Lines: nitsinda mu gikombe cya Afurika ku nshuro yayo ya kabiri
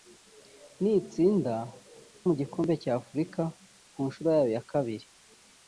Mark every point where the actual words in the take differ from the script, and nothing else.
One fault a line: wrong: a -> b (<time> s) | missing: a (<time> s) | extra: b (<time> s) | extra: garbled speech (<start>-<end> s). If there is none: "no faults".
no faults